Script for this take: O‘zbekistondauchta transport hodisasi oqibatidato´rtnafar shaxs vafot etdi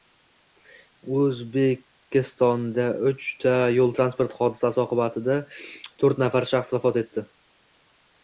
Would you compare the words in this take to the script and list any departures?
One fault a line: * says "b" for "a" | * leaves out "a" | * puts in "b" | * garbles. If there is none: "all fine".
* puts in "yo´l"